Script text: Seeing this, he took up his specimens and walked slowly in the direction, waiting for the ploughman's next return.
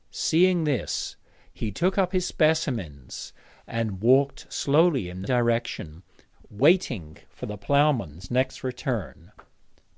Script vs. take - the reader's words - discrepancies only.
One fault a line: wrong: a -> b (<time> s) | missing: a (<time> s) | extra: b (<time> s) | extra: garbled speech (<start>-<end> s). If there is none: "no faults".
no faults